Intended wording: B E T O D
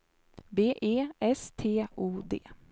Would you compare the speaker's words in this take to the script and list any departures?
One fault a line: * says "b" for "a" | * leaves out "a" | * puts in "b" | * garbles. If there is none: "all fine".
* puts in "S"